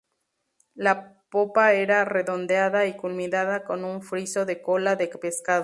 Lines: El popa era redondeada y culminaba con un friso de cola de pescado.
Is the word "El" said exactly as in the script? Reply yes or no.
no